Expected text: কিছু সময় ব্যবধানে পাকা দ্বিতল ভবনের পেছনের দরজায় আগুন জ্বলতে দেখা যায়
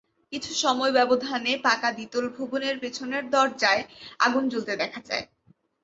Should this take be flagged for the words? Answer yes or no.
no